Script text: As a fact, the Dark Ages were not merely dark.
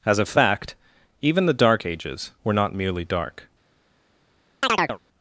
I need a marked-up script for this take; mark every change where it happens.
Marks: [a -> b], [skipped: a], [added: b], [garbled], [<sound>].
As a fact, [added: even] the Dark Ages were not merely dark. [chirp]